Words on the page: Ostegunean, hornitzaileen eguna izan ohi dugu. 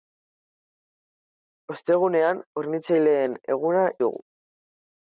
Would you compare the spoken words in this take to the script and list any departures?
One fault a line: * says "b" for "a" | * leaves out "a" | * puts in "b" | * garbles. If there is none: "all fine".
* leaves out "izan ohi"